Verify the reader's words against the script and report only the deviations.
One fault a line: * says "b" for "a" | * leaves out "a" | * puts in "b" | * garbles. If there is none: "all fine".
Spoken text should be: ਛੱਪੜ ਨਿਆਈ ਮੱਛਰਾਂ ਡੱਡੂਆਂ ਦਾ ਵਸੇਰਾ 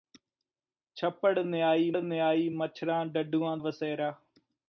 * puts in "ਨਿਆਈ"
* leaves out "ਦਾ"